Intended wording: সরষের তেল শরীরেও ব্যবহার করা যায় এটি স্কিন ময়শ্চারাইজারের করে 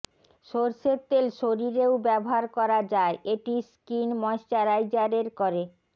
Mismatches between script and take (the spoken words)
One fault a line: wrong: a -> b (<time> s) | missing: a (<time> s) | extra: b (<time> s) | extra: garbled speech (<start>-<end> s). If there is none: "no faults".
no faults